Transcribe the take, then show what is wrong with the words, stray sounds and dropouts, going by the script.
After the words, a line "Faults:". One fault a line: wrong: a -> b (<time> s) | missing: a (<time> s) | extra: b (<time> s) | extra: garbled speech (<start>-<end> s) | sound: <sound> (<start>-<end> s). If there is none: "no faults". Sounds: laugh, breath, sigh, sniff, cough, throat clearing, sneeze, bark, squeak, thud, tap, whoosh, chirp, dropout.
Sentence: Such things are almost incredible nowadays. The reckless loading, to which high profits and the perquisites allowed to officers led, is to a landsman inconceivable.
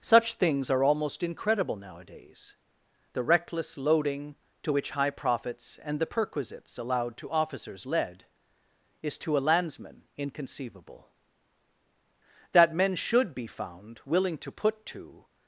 Such things are almost incredible nowadays. The reckless loading, to which high profits and the perquisites allowed to officers led, is to a landsman inconceivable. That men should be found willing to put to
Faults:
extra: That men should be found willing to put to (12.5 s)